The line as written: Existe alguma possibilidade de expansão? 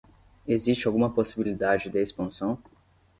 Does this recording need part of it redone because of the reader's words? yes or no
no